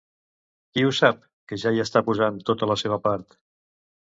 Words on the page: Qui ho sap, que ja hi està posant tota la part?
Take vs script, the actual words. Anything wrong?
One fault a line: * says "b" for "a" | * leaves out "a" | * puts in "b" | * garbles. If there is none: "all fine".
* puts in "seva"